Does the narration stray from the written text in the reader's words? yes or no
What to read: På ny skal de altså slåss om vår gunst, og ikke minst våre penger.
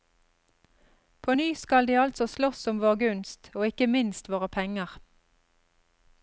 no